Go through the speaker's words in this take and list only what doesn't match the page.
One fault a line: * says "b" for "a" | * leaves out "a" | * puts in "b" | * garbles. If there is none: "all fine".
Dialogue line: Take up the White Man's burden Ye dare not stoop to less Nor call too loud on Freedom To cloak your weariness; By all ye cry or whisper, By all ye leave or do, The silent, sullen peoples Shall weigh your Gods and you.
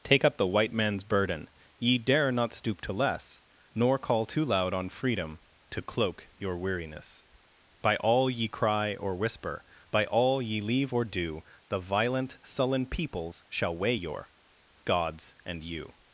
* says "violent" for "silent"